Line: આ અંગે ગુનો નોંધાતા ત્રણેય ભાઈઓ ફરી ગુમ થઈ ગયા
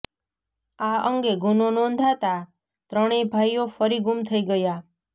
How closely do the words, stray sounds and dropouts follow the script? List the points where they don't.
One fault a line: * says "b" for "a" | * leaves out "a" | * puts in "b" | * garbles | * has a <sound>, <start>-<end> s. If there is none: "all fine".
all fine